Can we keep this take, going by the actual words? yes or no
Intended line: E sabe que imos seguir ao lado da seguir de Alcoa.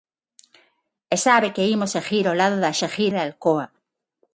yes